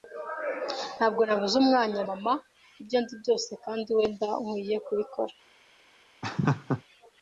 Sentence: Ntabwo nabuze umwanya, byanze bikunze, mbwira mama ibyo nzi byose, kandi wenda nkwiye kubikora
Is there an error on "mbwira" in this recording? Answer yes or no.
yes